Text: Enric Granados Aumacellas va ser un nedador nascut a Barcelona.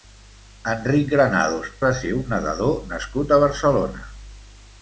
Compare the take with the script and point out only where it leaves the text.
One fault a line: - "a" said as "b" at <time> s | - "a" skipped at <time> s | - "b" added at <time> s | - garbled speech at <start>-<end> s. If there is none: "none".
- "Aumacellas" skipped at 1.7 s